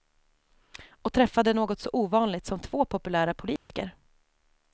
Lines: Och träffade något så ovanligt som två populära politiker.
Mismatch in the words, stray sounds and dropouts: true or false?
true